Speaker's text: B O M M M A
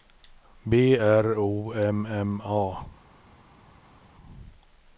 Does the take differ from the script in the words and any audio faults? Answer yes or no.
yes